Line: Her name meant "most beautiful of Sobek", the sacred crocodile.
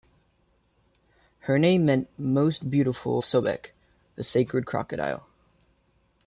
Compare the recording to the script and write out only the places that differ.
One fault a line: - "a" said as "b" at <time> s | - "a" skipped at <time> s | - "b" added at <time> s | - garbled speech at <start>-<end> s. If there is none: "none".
none